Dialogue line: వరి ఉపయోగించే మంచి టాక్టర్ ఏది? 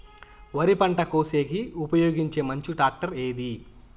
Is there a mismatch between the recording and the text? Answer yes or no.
yes